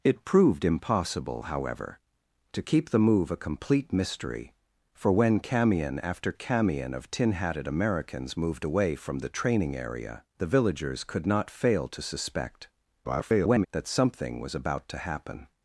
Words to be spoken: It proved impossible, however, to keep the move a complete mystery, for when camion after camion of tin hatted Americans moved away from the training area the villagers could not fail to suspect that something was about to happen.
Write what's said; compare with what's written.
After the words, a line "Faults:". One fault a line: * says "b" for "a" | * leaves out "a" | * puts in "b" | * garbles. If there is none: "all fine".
It proved impossible, however, to keep the move a complete mystery, for when camion after camion of tin hatted Americans moved away from the training area the villagers could not fail to suspect [garbled] that something was about to happen.
Faults:
* garbles